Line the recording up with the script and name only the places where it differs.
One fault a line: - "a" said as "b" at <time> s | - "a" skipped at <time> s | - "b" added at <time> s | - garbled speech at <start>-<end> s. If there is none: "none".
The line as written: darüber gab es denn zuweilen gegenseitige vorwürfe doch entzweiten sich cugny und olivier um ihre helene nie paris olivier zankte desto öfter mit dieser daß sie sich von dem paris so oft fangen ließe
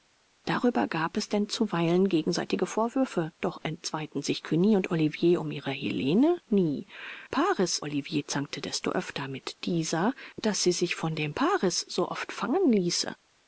none